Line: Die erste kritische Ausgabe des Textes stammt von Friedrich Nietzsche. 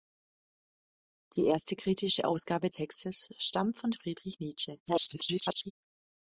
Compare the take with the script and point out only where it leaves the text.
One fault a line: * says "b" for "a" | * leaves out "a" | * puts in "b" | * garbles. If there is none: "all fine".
* leaves out "des"
* garbles